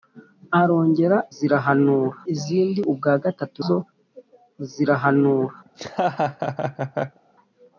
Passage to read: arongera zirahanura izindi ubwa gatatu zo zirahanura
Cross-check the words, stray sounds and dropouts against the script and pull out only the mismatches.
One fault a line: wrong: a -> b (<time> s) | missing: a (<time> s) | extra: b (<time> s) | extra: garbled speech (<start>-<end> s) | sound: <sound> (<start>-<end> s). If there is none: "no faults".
sound: laugh (5.7-7.2 s)